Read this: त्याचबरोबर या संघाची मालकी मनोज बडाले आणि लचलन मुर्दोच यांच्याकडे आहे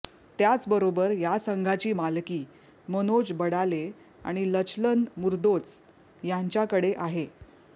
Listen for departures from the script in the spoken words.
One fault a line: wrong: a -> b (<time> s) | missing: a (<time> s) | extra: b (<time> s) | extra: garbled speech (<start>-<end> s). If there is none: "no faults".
no faults